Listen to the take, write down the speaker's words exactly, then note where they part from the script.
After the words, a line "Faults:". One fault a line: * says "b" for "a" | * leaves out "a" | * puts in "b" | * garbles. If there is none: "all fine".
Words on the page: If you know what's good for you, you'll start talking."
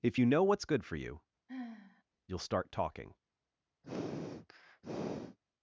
If you know what's good for you, you'll start talking."
Faults:
all fine